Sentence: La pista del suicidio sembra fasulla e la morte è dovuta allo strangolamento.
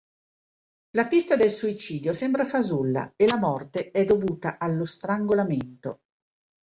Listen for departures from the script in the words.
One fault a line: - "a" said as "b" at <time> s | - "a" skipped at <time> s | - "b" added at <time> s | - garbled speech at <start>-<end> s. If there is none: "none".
none